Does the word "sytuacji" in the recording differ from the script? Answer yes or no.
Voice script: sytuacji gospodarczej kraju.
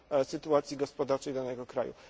no